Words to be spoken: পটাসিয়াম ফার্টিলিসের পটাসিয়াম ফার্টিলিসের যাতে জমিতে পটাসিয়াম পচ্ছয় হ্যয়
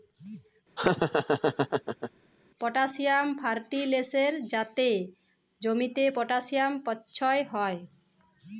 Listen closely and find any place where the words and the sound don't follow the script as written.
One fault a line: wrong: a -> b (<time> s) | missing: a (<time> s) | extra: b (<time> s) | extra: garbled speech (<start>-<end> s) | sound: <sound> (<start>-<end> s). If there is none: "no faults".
sound: laugh (0.8-2.1 s)
missing: পটাসিয়াম ফার্টিলিসের (4.3 s)